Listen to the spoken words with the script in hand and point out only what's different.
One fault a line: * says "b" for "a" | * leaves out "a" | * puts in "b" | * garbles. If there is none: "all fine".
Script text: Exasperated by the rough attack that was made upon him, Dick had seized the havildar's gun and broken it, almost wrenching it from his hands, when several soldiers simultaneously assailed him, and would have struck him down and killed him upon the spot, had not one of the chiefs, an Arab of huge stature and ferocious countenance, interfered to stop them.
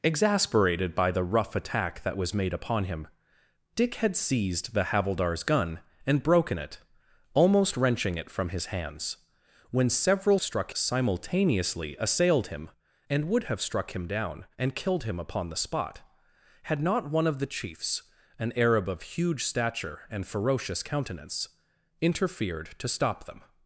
* says "struck" for "soldiers"